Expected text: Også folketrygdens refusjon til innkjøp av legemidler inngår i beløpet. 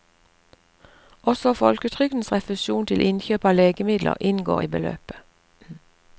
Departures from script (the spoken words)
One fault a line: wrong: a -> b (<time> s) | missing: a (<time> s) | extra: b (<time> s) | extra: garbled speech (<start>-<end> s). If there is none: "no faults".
no faults